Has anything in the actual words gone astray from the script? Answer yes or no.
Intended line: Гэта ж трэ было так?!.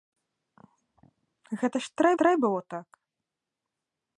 yes